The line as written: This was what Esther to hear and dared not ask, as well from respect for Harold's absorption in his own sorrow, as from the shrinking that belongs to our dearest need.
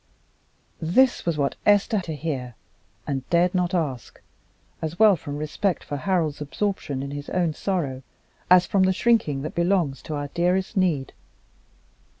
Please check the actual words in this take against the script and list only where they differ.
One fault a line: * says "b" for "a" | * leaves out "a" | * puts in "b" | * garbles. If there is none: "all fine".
all fine